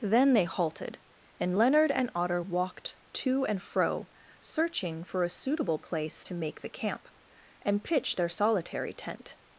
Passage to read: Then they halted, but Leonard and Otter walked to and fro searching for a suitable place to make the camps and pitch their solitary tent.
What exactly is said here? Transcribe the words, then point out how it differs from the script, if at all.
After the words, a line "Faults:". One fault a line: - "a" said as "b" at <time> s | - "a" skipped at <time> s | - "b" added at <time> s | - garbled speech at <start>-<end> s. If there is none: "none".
Then they halted, and Leonard and Otter walked to and fro searching for a suitable place to make the camp and pitch their solitary tent.
Faults:
- "but" said as "and" at 1.4 s
- "camps" said as "camp" at 6.7 s